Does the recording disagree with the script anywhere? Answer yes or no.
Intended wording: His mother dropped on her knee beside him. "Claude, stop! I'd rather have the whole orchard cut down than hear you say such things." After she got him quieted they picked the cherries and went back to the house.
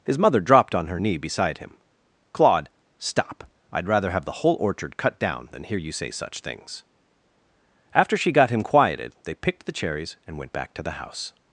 no